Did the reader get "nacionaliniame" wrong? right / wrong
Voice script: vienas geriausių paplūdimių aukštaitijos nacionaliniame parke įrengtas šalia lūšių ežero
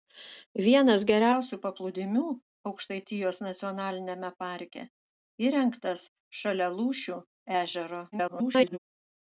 right